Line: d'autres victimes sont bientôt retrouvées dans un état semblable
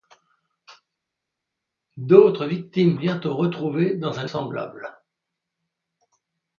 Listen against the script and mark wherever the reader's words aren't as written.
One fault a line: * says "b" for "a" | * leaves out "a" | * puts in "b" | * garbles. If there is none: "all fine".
* leaves out "sont"
* leaves out "état"